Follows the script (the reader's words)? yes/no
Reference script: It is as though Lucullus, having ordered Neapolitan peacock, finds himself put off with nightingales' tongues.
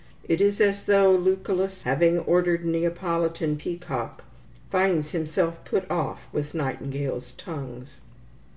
yes